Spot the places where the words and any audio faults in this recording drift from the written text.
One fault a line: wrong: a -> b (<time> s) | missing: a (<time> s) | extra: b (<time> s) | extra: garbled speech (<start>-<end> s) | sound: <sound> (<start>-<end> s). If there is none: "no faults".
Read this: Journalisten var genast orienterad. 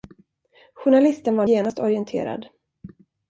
no faults